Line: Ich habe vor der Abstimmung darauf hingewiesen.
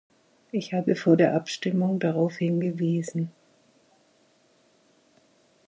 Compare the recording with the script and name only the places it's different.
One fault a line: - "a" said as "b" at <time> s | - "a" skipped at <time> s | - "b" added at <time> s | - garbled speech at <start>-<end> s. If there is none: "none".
none